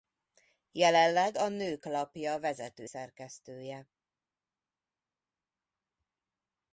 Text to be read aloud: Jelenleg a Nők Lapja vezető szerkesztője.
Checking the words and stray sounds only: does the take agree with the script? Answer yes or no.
yes